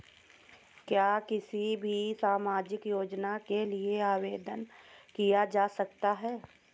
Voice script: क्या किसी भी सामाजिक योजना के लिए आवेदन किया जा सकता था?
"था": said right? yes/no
no